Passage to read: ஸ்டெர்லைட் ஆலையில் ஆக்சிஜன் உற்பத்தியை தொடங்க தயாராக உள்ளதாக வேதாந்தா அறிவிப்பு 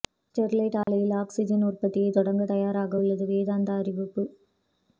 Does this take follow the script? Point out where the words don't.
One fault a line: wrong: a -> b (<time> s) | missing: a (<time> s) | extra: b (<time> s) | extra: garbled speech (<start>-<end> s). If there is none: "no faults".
no faults